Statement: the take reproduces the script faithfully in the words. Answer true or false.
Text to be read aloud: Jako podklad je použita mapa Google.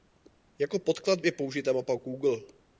true